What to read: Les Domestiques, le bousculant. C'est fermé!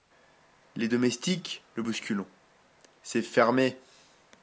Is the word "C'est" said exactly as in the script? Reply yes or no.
yes